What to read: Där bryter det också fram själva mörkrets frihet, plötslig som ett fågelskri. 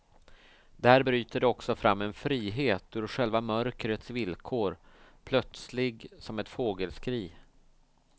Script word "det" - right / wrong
right